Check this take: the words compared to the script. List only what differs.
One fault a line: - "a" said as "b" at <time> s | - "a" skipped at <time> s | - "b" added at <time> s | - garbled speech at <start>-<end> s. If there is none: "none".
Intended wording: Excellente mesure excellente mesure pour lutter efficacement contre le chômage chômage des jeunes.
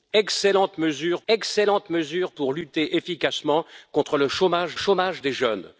none